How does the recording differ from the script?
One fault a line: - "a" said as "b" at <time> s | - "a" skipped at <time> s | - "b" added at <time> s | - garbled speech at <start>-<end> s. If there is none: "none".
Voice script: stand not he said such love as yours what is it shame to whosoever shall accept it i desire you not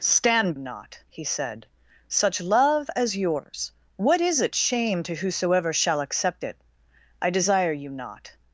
none